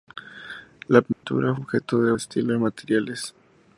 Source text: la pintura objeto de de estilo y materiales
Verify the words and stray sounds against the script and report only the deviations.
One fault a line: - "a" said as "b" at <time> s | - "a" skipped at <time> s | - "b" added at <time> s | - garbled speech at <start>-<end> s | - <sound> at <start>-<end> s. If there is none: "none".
- dropout at 1.1-1.2 s